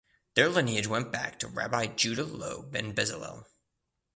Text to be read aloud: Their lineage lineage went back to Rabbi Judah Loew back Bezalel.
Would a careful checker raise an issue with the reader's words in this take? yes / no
yes